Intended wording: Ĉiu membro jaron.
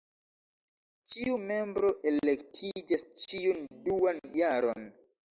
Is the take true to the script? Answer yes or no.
no